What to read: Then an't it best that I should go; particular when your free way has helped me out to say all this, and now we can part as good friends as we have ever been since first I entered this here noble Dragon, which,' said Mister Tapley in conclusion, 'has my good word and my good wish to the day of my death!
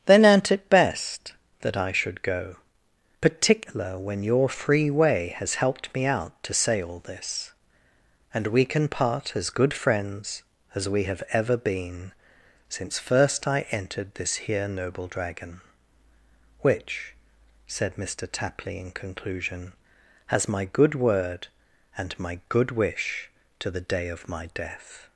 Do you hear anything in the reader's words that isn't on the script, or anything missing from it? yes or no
yes